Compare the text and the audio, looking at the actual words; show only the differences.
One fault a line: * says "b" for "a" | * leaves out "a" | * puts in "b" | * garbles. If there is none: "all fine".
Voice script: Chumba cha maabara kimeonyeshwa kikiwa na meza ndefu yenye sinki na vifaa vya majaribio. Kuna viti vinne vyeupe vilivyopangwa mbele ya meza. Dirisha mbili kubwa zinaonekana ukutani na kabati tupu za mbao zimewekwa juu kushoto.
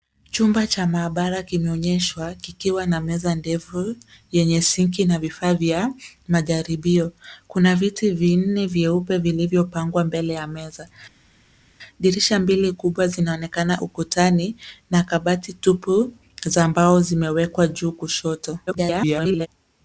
* garbles